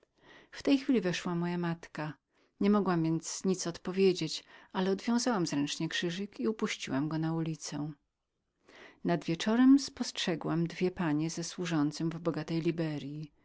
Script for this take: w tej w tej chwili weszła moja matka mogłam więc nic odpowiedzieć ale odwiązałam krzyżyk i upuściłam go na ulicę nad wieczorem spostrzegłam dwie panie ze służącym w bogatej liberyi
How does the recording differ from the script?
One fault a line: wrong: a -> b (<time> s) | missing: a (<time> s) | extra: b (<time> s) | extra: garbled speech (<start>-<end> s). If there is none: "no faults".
missing: w tej (0.8 s)
extra: nie (2.6 s)
extra: zręcznie (5.5 s)